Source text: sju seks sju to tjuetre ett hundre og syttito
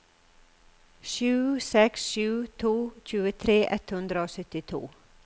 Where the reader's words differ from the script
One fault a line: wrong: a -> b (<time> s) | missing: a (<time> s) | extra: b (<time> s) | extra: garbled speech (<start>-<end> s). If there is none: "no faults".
no faults